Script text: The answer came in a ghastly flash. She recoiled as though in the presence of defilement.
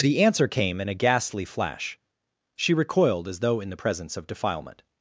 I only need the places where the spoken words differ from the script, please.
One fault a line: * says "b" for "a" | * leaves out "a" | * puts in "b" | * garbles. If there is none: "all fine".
all fine